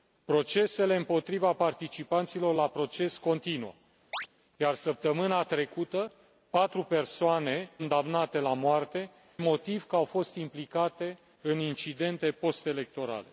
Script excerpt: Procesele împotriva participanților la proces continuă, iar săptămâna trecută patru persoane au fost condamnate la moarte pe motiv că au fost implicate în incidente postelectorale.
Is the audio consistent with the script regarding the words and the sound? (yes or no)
no